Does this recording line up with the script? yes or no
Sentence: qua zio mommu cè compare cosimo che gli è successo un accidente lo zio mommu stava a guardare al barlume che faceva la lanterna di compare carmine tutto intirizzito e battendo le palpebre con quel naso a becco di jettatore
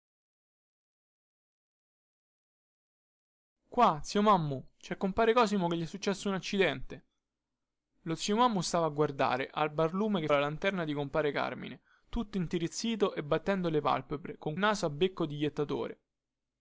no